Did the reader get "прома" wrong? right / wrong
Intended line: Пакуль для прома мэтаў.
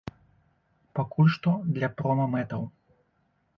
right